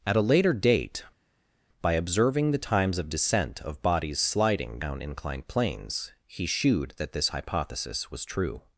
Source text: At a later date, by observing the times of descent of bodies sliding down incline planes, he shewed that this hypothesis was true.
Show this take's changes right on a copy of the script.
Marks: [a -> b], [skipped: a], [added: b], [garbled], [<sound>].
At a later date, by observing the times of descent of bodies sliding down [incline -> inclined] planes, he shewed that this hypothesis was true.